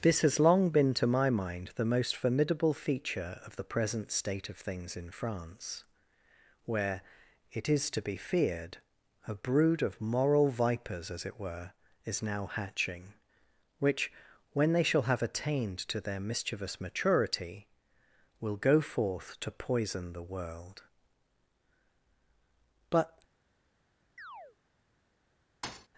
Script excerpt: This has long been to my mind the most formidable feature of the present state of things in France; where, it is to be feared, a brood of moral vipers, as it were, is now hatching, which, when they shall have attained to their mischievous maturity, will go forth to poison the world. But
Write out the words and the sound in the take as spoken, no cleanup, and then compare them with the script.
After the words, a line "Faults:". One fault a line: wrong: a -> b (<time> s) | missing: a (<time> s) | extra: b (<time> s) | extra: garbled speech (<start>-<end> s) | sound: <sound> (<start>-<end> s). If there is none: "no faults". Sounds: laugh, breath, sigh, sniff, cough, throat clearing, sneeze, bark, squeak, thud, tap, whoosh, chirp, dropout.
This has long been to my mind the most formidable feature of the present state of things in France; where, it is to be feared, a brood of moral vipers, as it were, is now hatching, which, when they shall have attained to their mischievous maturity, will go forth to poison the world. But
Faults:
sound: chirp (24.2-24.6 s)
sound: thud (25.6-25.9 s)